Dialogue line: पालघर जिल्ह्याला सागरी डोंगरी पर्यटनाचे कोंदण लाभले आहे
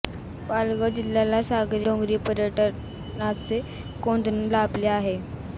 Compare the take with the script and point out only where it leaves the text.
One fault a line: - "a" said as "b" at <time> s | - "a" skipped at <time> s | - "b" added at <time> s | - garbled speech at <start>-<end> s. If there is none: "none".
none